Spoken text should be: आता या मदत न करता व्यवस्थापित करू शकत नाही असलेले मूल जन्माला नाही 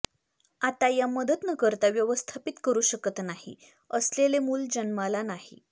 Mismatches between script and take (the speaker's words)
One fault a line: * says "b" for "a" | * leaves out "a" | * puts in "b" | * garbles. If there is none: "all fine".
all fine